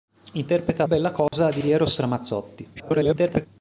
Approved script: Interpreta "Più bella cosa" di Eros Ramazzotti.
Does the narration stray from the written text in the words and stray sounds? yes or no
yes